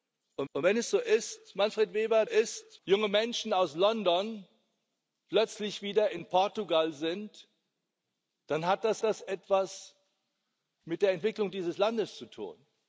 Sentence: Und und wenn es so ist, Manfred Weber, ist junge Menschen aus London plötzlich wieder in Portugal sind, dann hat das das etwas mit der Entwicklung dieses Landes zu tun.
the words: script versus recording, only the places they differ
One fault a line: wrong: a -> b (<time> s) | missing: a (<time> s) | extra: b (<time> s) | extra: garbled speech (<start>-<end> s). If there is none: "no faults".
no faults